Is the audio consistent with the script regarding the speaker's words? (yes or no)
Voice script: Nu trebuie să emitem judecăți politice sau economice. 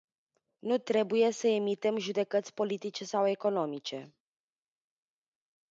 yes